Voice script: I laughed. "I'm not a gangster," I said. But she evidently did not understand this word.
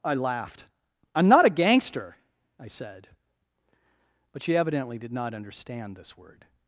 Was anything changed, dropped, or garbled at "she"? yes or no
no